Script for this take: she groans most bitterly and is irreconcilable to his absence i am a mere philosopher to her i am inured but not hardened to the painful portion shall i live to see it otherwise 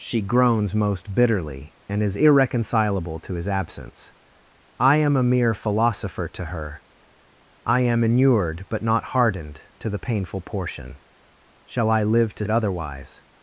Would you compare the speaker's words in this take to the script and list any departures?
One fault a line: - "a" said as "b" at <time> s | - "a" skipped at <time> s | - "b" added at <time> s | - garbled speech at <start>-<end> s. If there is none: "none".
- "see" skipped at 12.5 s